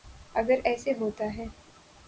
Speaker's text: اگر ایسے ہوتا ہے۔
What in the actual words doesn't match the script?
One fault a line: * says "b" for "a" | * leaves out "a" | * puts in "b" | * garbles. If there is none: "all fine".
all fine